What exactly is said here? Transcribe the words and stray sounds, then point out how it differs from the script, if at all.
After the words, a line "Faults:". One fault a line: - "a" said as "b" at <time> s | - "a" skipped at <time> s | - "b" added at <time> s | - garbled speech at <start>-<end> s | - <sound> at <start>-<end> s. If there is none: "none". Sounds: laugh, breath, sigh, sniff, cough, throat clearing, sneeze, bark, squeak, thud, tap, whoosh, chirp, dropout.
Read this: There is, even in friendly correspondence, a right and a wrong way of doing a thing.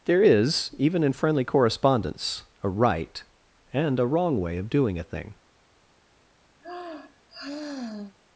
There is, even in friendly correspondence, a right and a wrong way of doing a thing.
Faults:
- sigh at 6.6-8.1 s